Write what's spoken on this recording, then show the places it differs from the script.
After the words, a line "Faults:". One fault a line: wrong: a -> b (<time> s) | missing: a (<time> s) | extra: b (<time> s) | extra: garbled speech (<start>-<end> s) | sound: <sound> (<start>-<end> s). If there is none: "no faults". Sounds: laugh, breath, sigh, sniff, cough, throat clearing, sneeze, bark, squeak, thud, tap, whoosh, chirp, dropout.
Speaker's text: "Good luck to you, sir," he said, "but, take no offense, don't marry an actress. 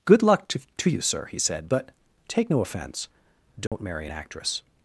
"Good luck to to you, sir," he said, "but, take no offense, don't marry an actress.
Faults:
extra: to (0.8 s)
sound: dropout (3.7-3.7 s)